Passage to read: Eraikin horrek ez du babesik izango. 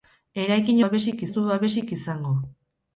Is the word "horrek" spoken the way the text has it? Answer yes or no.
no